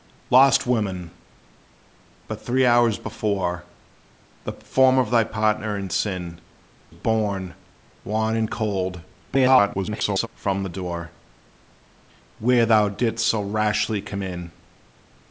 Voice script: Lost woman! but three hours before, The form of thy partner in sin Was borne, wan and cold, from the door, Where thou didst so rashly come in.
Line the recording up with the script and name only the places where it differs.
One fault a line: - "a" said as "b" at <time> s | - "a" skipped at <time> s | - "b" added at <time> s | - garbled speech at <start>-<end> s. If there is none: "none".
- "Was" skipped at 6.4 s
- garbled speech at 9.3-10.3 s